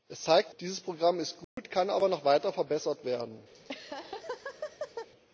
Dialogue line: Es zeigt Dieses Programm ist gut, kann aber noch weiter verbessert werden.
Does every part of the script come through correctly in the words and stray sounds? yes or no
no